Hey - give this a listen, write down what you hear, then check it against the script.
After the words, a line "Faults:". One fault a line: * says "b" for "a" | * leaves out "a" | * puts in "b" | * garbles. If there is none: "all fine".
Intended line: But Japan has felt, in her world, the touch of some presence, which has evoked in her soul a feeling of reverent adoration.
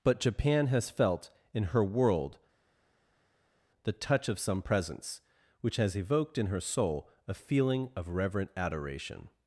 But Japan has felt, in her world, the touch of some presence, which has evoked in her soul a feeling of reverent adoration.
Faults:
all fine